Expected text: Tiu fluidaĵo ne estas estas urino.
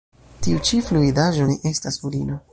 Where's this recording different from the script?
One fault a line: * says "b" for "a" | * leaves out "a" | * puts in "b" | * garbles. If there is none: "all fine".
* puts in "ĉi"
* leaves out "estas"